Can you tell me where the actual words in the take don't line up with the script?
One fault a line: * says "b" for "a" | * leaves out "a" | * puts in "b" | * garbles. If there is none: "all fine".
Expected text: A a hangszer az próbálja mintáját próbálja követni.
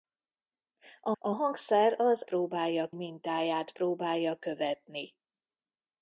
all fine